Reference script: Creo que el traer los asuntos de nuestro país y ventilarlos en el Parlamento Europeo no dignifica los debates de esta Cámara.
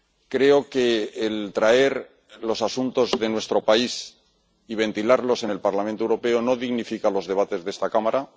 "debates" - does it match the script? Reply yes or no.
yes